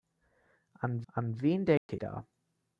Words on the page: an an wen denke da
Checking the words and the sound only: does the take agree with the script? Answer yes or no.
no